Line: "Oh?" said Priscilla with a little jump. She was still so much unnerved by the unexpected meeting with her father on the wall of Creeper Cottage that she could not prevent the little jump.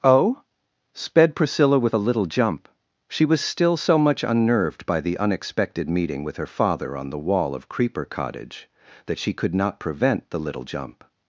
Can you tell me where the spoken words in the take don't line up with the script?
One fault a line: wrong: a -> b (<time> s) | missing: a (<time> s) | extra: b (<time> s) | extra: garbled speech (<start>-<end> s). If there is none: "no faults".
wrong: said -> sped (0.9 s)